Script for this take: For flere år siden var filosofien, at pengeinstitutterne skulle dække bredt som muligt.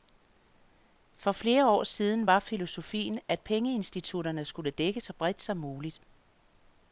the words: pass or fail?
fail